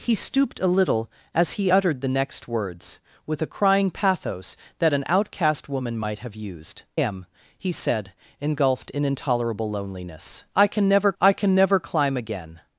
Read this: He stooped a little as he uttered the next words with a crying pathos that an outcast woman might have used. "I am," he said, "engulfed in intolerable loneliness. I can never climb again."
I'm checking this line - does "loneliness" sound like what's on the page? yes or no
yes